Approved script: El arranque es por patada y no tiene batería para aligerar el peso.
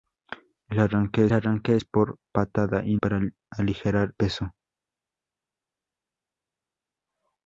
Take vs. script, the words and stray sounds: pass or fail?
fail